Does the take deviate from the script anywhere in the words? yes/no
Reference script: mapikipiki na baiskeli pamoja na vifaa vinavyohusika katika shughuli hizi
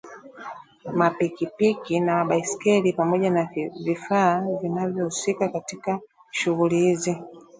no